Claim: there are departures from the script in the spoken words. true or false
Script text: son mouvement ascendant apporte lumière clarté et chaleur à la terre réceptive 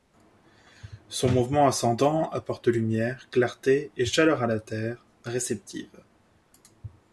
false